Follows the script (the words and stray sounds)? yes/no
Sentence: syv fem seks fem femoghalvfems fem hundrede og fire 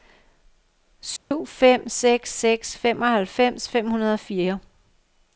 no